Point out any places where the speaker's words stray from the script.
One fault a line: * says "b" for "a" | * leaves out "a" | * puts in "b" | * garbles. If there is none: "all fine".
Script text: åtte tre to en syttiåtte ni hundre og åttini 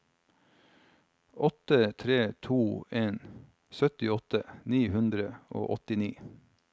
all fine